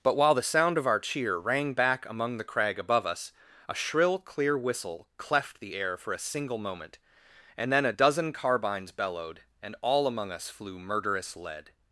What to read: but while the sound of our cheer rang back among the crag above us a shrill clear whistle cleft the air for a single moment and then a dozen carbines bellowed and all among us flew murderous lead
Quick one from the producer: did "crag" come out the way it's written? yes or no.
yes